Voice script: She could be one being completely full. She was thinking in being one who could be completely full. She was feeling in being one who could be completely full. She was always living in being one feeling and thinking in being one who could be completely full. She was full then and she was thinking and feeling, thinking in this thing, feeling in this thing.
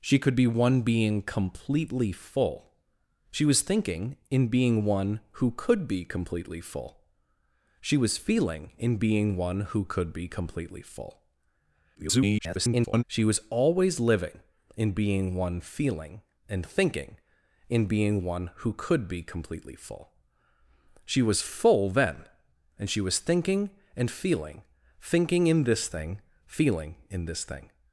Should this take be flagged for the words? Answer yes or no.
yes